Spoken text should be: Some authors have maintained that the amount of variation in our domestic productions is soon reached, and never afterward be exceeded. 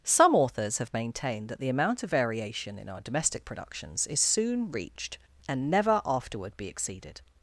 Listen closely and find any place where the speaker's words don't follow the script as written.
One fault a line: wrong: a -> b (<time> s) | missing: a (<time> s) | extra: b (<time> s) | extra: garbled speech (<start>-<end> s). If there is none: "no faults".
no faults